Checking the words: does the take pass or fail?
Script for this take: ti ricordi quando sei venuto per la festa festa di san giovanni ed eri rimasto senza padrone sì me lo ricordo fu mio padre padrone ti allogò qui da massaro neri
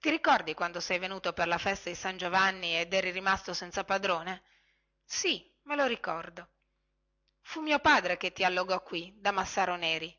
fail